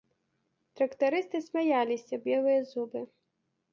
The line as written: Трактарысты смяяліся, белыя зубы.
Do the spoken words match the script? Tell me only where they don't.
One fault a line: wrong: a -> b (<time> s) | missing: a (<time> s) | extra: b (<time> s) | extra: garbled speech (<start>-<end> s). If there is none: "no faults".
no faults